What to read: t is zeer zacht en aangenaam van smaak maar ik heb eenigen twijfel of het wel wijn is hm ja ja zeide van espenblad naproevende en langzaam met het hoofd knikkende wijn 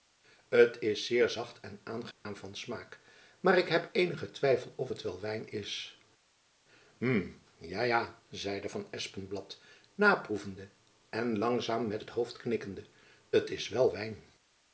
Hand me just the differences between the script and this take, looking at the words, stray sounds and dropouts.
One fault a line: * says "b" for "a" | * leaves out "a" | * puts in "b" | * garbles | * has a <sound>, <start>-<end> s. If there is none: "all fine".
* has a dropout, 2.1-2.3 s
* puts in "t is wel"